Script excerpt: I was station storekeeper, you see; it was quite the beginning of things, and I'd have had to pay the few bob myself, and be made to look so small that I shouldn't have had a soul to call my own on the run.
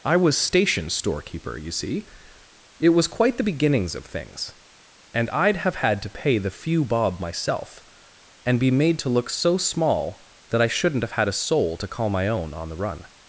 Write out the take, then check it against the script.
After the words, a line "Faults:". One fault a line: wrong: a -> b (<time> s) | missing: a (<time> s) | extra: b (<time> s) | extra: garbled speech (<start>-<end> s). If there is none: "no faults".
I was station storekeeper, you see; it was quite the beginnings of things, and I'd have had to pay the few bob myself, and be made to look so small that I shouldn't have had a soul to call my own on the run.
Faults:
wrong: beginning -> beginnings (3.4 s)